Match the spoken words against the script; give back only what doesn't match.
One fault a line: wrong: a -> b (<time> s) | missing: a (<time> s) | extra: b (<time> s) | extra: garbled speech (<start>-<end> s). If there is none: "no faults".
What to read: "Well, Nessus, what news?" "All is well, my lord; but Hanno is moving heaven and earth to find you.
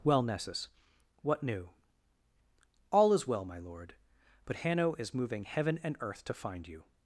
wrong: news -> new (1.4 s)